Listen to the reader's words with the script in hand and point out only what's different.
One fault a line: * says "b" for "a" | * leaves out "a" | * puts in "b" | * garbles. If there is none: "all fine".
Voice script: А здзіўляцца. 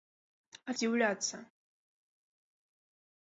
all fine